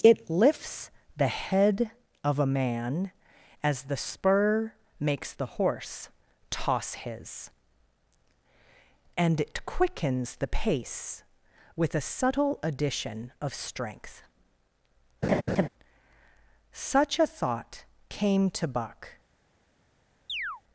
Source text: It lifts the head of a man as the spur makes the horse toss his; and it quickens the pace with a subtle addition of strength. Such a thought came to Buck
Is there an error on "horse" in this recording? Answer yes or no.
no